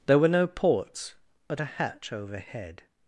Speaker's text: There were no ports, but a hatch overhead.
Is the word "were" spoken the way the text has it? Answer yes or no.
yes